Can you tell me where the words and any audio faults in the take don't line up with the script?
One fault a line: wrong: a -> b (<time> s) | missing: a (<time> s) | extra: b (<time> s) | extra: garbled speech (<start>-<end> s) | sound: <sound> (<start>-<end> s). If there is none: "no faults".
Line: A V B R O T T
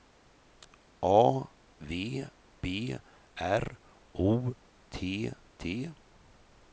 no faults